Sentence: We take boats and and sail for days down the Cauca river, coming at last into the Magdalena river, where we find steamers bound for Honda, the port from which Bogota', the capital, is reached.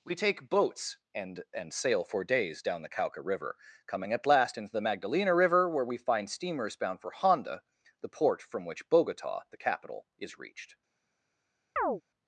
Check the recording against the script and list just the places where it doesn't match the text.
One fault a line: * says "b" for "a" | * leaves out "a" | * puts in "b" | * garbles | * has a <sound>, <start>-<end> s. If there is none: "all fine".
* has a chirp, 11.8-12.0 s